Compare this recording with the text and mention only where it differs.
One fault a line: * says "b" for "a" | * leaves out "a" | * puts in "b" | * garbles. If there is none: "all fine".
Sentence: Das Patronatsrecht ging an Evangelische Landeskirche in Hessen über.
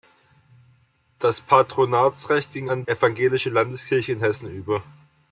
all fine